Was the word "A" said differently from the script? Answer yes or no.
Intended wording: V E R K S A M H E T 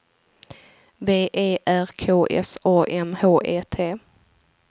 no